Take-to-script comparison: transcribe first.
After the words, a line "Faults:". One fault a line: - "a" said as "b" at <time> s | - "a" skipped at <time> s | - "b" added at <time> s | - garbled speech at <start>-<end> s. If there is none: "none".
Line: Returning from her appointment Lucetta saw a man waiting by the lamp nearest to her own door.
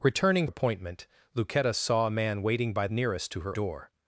Returning appointment Lucetta saw a man waiting by nearest to her door.
Faults:
- "from her" skipped at 0.5 s
- "the lamp" skipped at 2.9 s
- "own" skipped at 3.6 s